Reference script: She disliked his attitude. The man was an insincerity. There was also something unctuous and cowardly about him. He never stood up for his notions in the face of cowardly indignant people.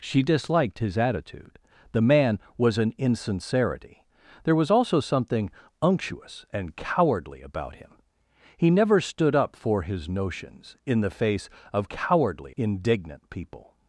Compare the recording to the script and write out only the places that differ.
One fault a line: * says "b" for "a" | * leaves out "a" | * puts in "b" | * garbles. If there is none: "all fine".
all fine